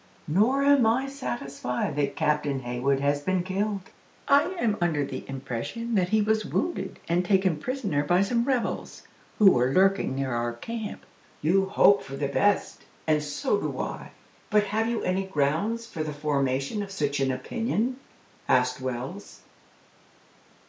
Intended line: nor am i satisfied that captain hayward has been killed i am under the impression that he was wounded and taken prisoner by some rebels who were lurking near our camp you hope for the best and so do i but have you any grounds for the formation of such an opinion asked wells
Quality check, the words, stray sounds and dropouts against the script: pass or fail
pass